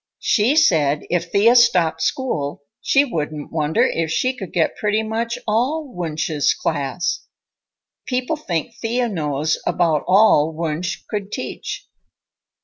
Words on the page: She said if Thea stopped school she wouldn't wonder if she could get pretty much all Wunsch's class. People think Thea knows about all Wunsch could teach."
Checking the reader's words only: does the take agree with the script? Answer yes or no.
yes